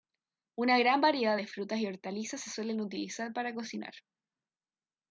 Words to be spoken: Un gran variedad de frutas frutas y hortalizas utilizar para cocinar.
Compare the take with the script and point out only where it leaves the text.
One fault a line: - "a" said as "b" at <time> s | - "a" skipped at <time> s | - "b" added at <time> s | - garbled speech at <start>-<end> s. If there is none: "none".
- "Un" said as "Una" at 0.6 s
- "frutas" skipped at 1.8 s
- "se suelen" added at 2.4 s